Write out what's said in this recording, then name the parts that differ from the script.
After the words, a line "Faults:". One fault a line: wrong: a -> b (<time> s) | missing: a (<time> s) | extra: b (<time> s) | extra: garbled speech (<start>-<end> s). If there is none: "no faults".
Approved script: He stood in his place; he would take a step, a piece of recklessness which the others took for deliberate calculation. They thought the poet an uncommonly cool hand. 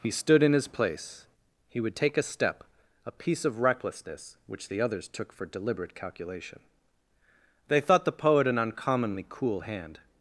He stood in his place; he would take a step, a piece of recklessness which the others took for deliberate calculation. They thought the poet an uncommonly cool hand.
Faults:
no faults